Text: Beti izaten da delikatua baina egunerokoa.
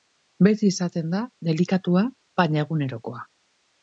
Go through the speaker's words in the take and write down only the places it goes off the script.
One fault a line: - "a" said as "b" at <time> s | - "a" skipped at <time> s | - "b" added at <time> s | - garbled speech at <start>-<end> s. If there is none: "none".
none